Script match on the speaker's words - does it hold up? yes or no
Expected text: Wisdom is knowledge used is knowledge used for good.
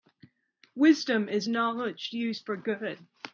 no